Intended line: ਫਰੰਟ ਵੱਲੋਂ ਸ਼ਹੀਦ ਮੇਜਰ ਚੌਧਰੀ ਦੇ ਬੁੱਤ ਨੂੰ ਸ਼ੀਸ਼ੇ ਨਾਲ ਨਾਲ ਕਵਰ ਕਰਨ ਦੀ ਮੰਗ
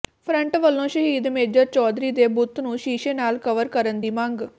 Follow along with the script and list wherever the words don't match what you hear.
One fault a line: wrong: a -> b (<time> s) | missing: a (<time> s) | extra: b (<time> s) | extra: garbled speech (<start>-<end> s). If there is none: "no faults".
missing: ਨਾਲ (3.4 s)